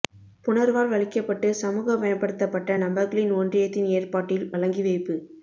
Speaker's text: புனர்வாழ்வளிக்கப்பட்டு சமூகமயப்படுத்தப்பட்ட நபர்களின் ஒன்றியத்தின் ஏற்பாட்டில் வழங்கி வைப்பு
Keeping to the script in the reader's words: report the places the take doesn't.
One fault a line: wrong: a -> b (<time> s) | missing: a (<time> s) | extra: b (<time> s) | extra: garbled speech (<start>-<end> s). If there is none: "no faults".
no faults